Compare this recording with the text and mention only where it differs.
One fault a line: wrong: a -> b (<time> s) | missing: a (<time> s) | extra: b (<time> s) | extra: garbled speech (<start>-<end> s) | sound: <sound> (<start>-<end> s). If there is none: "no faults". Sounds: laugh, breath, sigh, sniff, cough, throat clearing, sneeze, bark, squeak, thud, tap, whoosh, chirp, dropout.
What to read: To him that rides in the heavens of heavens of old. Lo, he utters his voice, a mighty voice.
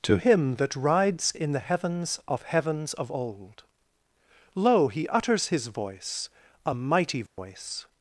sound: dropout (7.3-7.4 s)